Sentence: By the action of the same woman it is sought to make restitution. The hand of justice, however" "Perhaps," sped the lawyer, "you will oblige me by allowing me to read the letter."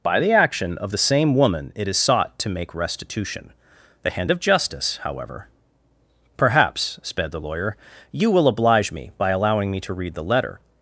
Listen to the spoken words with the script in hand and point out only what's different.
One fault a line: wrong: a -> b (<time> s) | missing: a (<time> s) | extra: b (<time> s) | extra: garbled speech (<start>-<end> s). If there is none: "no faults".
no faults